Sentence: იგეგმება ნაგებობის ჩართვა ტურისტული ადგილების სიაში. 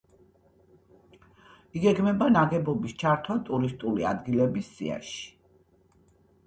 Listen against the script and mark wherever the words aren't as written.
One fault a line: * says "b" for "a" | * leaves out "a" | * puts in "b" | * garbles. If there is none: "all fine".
all fine